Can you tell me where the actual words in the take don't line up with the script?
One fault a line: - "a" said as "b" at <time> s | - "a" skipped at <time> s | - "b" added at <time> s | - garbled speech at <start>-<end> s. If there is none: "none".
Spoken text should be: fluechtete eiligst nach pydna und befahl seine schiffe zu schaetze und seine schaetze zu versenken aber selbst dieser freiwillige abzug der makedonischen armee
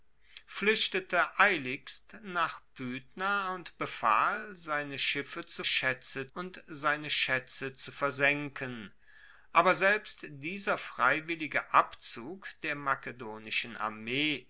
none